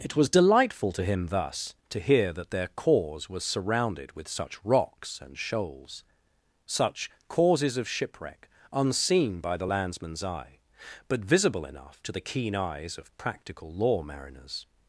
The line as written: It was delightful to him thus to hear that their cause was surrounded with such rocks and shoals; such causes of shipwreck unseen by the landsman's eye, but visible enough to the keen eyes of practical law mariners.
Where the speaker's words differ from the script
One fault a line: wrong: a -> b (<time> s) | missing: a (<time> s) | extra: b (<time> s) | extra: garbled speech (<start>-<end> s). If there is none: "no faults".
no faults